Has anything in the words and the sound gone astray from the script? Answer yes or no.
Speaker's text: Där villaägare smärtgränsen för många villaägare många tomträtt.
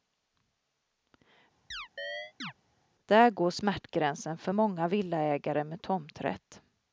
yes